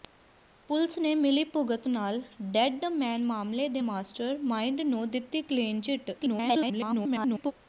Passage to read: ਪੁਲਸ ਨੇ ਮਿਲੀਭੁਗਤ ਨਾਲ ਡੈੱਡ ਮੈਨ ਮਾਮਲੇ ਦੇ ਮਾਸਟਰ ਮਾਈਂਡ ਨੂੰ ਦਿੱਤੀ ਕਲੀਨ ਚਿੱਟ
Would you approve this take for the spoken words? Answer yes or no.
no